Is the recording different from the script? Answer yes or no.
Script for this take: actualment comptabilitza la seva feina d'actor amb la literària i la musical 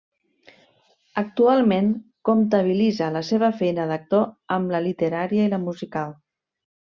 no